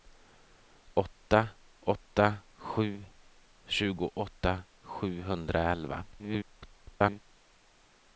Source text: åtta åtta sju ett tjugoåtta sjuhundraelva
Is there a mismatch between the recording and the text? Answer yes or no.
yes